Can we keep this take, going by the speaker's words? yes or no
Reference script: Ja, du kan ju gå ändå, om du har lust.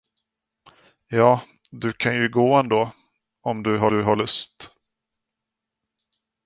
no